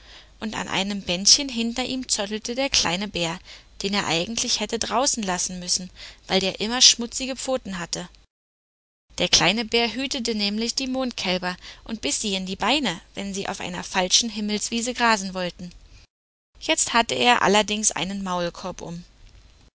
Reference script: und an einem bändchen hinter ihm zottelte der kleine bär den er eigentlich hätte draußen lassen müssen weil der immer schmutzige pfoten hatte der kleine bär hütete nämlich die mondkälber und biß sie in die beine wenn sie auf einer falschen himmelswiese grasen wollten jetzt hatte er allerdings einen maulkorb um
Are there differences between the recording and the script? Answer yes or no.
no